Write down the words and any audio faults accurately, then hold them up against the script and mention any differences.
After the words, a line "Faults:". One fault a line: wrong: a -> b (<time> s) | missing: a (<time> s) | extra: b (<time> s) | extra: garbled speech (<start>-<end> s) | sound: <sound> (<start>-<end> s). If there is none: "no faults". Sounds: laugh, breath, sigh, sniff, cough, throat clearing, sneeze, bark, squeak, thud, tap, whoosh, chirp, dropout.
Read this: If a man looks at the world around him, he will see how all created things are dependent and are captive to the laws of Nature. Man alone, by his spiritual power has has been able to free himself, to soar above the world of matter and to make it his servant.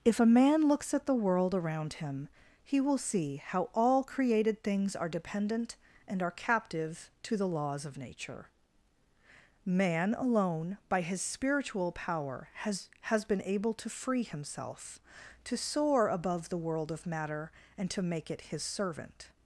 If a man looks at the world around him, he will see how all created things are dependent and are captive to the laws of Nature. Man alone, by his spiritual power has has been able to free himself, to soar above the world of matter and to make it his servant.
Faults:
no faults